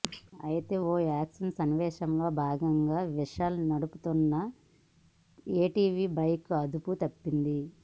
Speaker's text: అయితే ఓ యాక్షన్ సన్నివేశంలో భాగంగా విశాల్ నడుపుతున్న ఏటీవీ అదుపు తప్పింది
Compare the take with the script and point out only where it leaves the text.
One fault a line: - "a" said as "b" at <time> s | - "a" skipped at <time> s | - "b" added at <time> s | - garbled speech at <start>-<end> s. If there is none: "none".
- "బైక్" added at 6.2 s